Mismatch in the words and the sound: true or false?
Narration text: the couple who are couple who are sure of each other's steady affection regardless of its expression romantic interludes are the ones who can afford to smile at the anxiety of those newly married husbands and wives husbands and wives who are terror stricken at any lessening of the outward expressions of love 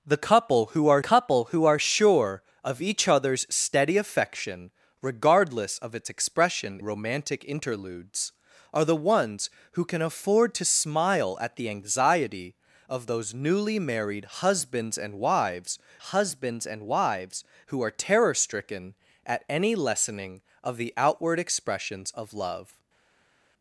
false